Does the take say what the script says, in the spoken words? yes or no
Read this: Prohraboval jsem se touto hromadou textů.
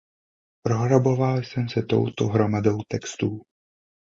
yes